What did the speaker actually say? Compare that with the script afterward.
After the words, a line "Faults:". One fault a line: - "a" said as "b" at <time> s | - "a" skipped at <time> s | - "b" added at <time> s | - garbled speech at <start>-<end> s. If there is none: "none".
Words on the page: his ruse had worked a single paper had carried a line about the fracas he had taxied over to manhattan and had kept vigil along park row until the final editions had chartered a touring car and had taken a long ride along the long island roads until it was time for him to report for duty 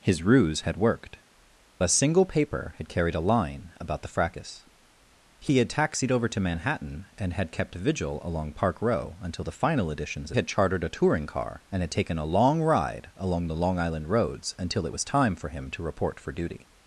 his ruse had worked a single paper had carried a line about the fracas he had taxied over to manhattan and had kept vigil along park row until the final editions had chartered a touring car and had taken a long ride along the long island roads until it was time for him to report for duty
Faults:
none